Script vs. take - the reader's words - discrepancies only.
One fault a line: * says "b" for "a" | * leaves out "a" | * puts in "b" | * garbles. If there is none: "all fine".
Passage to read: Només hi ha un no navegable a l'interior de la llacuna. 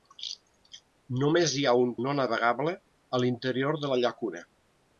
all fine